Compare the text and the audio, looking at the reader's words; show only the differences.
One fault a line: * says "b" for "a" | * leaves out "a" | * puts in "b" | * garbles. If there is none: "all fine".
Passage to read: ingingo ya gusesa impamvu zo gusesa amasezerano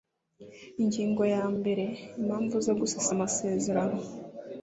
* says "mbere" for "gusesa"